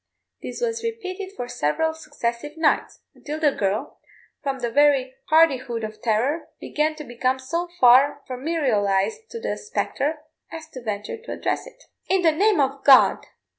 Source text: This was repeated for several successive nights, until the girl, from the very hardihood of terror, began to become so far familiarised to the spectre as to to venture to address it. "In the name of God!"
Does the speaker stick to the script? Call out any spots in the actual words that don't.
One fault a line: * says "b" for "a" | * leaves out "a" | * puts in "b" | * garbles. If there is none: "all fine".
* leaves out "to"